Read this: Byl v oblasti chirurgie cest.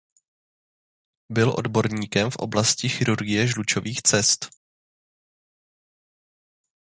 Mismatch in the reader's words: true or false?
true